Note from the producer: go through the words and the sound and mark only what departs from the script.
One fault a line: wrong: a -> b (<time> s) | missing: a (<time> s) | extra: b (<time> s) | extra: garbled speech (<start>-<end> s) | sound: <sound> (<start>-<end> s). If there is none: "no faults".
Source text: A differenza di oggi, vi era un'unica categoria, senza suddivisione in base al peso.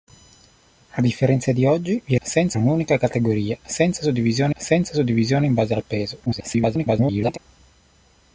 wrong: era -> senza (2.2 s)
extra: senza suddivisione (4.5 s)
extra: garbled speech (6.3-7.4 s)